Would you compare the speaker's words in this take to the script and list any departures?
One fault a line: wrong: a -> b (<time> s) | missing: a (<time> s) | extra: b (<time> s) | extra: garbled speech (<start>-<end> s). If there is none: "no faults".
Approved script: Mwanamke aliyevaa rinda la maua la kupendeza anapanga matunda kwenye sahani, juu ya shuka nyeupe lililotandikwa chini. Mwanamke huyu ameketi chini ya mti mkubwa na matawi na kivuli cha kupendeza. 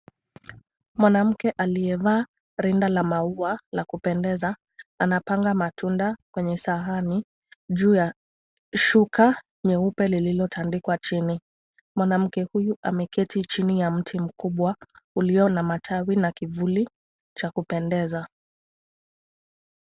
extra: ulio (15.2 s)